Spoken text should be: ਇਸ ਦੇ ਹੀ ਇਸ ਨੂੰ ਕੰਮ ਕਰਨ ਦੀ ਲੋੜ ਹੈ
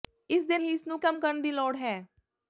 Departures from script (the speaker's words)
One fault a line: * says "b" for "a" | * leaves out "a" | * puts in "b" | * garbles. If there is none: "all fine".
all fine